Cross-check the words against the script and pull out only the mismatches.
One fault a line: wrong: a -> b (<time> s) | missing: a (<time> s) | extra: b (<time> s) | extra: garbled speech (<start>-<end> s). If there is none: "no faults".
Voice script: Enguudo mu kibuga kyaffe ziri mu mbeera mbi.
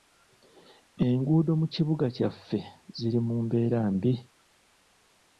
no faults